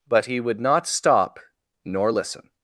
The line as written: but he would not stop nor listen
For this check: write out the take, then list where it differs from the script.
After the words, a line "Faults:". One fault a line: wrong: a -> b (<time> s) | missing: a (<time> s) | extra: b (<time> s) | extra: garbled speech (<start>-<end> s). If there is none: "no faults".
but he would not stop nor listen
Faults:
no faults